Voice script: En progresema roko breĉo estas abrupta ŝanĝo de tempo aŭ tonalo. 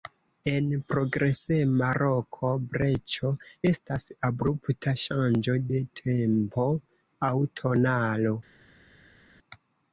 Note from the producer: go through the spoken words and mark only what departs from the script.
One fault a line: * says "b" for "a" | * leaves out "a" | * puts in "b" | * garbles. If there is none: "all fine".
all fine